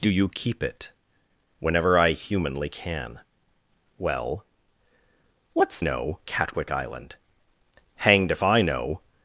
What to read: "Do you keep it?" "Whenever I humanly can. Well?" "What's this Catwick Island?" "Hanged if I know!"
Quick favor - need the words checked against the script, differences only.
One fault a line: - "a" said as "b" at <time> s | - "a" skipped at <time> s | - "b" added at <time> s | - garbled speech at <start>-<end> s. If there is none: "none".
- "this" said as "know" at 5.8 s